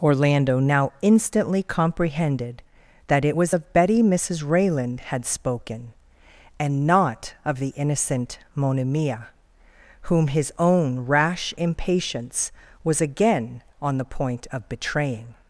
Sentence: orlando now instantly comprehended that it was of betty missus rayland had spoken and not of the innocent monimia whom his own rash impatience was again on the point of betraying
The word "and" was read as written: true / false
true